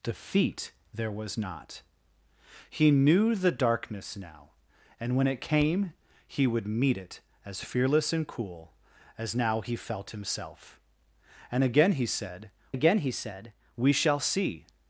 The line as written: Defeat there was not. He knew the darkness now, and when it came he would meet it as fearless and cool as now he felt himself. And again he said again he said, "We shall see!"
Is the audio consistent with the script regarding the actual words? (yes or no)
yes